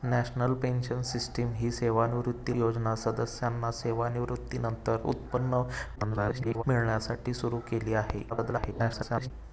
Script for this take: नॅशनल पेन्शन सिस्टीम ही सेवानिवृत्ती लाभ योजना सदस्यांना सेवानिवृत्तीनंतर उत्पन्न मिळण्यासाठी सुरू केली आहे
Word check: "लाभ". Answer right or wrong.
wrong